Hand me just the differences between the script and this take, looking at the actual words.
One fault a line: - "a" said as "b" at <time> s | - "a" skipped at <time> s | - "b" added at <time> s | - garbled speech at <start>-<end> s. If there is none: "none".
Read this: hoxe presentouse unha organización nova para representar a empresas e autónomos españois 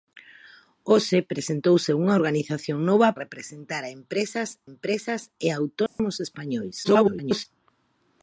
- "para" skipped at 3.1 s
- "empresas" added at 4.7 s
- garbled speech at 6.8-7.5 s